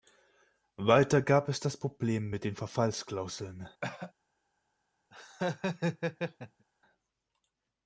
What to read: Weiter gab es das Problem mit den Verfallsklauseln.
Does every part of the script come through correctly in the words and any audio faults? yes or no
no